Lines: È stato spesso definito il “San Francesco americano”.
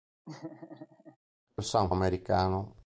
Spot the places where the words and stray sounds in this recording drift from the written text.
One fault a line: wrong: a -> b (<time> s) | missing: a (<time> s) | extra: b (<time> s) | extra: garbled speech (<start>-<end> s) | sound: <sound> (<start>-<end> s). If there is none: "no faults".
sound: laugh (0.2-1.2 s)
missing: stato spesso definito (1.6 s)
missing: Francesco (1.9 s)